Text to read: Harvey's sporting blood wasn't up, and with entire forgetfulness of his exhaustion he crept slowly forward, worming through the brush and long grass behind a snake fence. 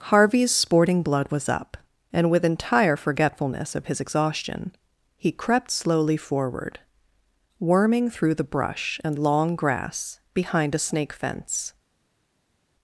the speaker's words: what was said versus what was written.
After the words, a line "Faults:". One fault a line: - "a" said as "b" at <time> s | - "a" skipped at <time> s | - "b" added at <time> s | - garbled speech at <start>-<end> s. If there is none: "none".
Harvey's sporting blood was up, and with entire forgetfulness of his exhaustion he crept slowly forward, worming through the brush and long grass behind a snake fence.
Faults:
- "wasn't" said as "was" at 1.3 s